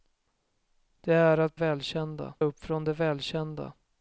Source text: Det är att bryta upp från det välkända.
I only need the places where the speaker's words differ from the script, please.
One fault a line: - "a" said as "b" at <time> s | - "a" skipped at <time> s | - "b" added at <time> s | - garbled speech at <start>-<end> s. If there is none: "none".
- "bryta" said as "välkända" at 1.5 s